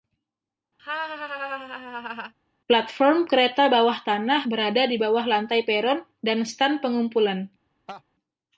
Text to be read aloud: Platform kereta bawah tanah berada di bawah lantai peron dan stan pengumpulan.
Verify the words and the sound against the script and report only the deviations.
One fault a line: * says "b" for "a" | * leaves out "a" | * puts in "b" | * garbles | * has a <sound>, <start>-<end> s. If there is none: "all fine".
* has a laugh, 0.8-2.3 s
* has a laugh, 7.9-8.0 s